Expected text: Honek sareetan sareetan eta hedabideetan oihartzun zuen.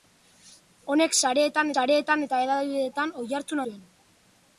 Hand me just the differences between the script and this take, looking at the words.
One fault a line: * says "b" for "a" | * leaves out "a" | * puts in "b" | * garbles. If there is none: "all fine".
all fine